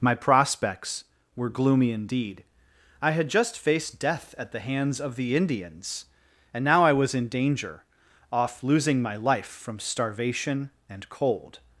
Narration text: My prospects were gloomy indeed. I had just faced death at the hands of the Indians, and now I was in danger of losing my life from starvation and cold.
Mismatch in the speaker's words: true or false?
true